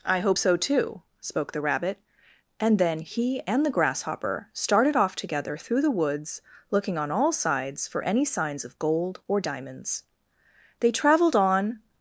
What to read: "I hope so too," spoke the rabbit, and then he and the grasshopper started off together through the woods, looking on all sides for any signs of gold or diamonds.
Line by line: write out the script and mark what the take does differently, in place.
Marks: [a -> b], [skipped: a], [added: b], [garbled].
"I hope so too," spoke the rabbit, and then he and the grasshopper started off together through the woods, looking on all sides for any signs of gold or diamonds. [added: They traveled on]